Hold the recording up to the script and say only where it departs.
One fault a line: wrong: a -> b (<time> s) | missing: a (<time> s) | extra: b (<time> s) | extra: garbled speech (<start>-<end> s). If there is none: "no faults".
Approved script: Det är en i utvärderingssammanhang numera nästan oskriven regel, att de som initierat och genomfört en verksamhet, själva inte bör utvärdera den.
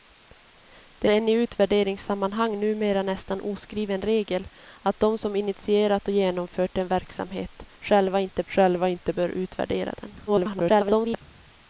missing: är (1.1 s)
extra: själva inte (8.5 s)
extra: garbled speech (10.3-11.2 s)